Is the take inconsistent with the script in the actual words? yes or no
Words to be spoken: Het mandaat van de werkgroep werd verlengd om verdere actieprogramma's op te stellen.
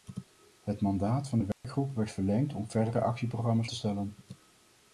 yes